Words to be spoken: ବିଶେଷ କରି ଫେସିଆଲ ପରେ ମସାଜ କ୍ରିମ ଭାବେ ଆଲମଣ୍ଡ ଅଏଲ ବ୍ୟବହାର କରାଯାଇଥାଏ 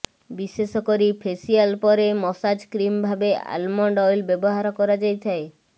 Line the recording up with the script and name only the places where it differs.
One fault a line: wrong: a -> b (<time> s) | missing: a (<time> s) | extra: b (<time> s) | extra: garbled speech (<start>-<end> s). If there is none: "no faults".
no faults